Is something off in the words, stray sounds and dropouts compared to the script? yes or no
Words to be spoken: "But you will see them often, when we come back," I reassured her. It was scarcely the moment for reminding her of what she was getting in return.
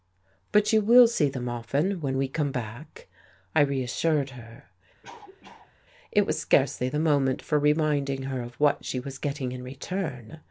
yes